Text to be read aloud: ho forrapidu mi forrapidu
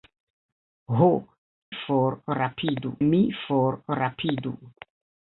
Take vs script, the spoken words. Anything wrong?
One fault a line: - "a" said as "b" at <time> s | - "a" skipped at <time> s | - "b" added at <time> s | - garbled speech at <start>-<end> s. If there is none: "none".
none